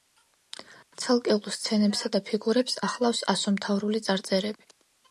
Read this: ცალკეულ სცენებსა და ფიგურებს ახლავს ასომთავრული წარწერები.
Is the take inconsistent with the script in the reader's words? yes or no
no